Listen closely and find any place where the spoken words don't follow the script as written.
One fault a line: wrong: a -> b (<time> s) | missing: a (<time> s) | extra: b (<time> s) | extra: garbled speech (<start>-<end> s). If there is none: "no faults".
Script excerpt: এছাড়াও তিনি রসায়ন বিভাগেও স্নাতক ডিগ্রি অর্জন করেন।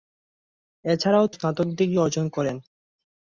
missing: তিনি রসায়ন বিভাগেও (1.2 s)